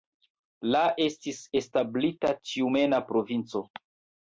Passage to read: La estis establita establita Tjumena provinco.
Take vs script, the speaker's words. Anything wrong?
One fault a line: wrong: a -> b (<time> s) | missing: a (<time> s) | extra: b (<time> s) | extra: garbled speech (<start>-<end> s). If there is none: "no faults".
missing: establita (2.3 s)